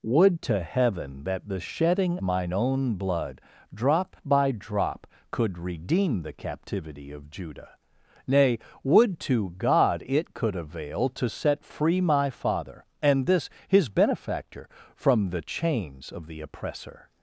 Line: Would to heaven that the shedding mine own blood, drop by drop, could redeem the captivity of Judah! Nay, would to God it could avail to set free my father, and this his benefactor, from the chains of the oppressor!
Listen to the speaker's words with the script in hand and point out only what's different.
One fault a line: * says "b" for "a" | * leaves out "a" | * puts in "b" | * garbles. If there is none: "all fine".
all fine